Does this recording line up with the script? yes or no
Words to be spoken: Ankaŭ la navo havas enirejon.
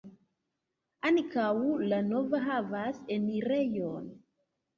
yes